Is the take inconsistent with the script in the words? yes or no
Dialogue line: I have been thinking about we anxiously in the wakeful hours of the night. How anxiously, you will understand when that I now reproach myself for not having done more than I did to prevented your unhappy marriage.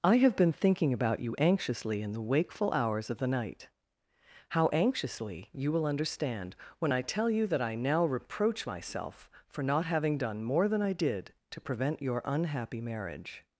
yes